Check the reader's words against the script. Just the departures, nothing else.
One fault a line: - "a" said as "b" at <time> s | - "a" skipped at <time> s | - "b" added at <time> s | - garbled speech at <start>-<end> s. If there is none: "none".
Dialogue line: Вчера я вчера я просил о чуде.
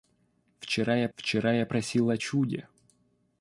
none